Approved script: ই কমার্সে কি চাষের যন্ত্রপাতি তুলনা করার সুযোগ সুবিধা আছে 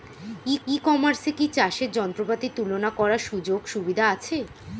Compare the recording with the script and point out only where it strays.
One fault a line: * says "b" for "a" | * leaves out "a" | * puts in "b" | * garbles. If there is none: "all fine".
* puts in "ই"